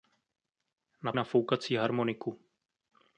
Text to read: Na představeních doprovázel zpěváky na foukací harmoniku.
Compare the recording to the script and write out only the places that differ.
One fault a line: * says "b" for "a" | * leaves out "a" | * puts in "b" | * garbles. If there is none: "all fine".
* leaves out "představeních doprovázel zpěváky"